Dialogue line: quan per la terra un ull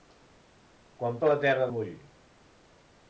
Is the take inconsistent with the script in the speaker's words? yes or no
no